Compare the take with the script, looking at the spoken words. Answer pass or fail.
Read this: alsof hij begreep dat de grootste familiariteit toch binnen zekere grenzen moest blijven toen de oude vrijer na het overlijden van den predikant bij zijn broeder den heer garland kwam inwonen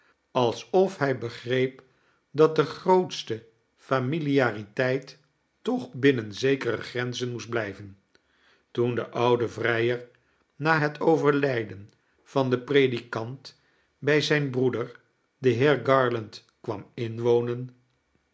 pass